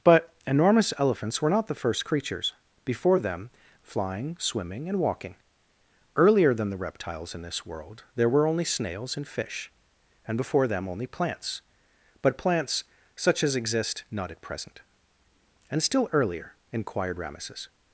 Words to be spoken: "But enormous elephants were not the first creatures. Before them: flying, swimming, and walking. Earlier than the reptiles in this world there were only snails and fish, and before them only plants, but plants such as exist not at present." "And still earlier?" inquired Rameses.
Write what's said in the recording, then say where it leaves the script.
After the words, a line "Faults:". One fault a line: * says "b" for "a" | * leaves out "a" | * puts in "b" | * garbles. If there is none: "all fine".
"But enormous elephants were not the first creatures. Before them: flying, swimming, and walking. Earlier than the reptiles in this world there were only snails and fish, and before them only plants, but plants such as exist not at present." "And still earlier?" inquired Rameses.
Faults:
all fine